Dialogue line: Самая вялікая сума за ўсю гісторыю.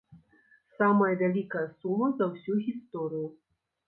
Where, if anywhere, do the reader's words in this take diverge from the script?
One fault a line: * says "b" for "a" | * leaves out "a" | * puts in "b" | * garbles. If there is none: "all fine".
all fine